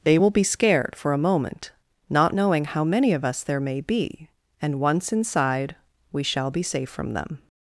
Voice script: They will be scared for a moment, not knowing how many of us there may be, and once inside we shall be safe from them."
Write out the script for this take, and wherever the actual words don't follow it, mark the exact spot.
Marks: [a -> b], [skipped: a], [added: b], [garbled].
They will be scared for a moment, not knowing how many of us there may be, and once inside we shall be safe from them."